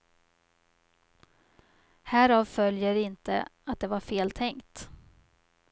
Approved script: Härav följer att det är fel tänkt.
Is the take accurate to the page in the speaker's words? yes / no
no